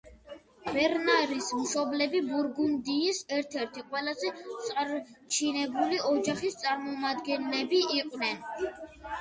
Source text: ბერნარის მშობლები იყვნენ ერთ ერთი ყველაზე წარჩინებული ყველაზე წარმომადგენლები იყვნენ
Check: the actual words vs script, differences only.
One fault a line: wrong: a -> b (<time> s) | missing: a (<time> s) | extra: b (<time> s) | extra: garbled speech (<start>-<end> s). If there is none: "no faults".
wrong: იყვნენ -> ბურგუნდიის (2.3 s)
wrong: ყველაზე -> ოჯახის (6.2 s)